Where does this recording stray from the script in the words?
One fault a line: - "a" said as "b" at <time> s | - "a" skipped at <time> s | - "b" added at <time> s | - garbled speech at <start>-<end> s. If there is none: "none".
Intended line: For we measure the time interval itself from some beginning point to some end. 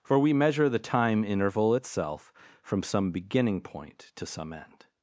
none